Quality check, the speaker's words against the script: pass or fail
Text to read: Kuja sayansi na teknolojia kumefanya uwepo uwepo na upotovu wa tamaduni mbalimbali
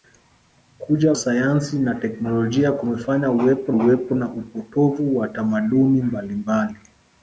pass